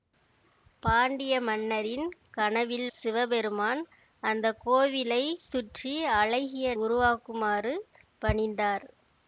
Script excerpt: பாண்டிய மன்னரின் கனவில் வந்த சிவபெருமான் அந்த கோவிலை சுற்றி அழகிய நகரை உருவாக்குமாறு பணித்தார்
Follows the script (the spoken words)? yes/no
no